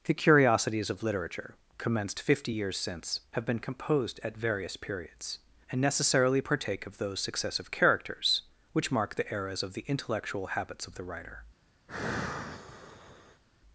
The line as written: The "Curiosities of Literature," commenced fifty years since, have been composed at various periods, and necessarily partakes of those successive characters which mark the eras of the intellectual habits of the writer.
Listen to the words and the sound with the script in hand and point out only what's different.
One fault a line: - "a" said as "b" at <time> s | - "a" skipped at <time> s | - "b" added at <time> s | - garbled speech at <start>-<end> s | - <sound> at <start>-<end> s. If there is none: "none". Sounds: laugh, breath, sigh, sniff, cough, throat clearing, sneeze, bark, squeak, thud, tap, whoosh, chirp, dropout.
- "partakes" said as "partake" at 6.4 s
- sigh at 11.9-13.4 s